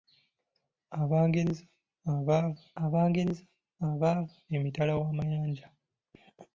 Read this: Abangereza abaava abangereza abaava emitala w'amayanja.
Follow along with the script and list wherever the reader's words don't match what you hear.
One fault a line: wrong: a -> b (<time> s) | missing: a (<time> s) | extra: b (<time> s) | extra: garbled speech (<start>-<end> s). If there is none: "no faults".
no faults